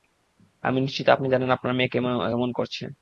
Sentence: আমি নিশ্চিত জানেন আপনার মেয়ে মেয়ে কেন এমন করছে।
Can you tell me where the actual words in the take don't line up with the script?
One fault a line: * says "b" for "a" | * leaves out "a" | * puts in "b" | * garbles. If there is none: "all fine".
* puts in "আপনি"
* leaves out "মেয়ে"